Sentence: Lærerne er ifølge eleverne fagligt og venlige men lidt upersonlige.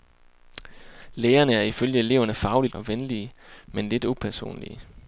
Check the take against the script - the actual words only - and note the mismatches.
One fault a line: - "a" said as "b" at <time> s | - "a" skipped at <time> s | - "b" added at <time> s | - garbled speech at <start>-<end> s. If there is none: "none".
none